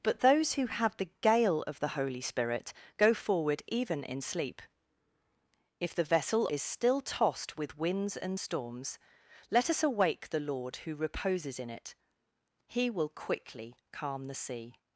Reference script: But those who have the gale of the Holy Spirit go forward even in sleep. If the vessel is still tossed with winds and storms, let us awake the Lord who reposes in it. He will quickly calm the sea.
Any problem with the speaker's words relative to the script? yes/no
no